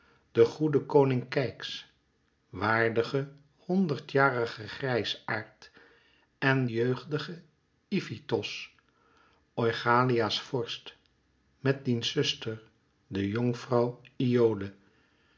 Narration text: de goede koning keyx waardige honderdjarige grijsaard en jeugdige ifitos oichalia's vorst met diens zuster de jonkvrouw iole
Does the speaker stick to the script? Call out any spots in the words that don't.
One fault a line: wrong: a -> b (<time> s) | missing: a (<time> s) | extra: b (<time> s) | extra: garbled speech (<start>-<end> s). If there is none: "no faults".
no faults